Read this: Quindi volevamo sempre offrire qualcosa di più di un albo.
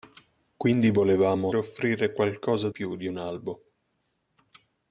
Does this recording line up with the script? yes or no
no